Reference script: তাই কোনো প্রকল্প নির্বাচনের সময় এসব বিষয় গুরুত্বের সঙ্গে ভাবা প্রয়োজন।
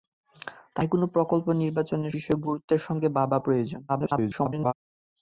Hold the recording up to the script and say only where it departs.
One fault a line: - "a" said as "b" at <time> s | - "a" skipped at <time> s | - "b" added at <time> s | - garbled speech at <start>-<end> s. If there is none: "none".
- "সময় এসব" skipped at 2.1 s
- garbled speech at 3.9-4.7 s